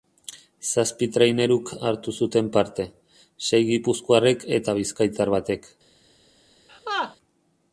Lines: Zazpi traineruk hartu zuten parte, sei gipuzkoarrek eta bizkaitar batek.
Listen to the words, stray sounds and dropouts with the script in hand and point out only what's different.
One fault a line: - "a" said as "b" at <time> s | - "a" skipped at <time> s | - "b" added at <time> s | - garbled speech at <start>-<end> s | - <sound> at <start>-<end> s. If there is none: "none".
- laugh at 6.7-7.2 s